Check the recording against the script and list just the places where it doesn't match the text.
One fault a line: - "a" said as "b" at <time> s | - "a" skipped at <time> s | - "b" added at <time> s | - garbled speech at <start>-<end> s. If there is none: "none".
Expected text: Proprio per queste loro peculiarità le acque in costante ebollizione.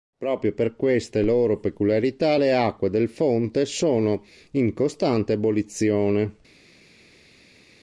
- "del fonte sono" added at 2.9 s